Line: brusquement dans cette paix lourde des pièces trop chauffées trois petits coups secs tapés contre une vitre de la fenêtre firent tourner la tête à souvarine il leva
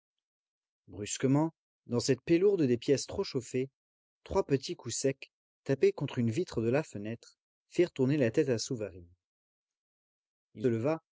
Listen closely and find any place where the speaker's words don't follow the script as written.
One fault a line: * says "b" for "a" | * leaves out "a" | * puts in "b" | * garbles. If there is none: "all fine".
all fine